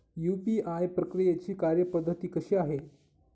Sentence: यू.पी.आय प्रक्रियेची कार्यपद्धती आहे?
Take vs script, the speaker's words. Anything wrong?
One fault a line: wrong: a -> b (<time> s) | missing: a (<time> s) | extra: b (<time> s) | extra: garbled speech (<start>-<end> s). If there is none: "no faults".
extra: कशी (2.3 s)